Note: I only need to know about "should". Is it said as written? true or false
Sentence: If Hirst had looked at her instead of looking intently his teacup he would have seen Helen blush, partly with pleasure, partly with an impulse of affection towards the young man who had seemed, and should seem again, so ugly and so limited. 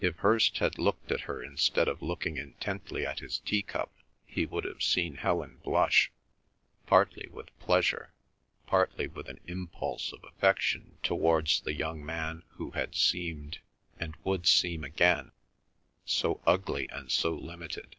false